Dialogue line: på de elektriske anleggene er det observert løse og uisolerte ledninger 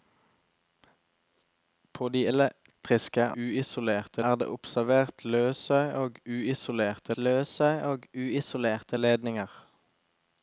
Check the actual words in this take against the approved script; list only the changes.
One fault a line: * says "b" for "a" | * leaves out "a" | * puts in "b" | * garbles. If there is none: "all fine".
* says "uisolerte" for "anleggene"
* puts in "løse og uisolerte"